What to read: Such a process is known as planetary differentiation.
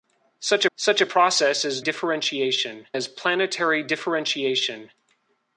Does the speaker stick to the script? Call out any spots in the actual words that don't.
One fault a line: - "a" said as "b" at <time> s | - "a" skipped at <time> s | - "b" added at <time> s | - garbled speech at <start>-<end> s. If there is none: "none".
- "such" added at 0.8 s
- "known" said as "differentiation" at 1.8 s